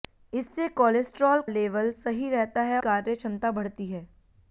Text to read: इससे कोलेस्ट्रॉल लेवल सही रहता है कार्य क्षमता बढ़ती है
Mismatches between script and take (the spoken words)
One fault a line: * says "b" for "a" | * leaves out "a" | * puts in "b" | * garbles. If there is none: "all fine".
all fine